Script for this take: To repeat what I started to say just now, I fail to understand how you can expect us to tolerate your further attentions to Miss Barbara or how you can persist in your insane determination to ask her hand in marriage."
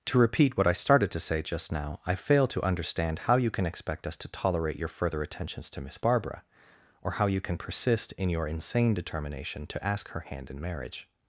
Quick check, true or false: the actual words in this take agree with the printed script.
true